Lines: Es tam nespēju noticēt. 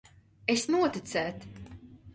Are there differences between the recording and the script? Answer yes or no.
yes